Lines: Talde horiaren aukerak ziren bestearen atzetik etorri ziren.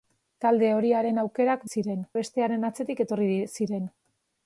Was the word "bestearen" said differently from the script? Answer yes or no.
no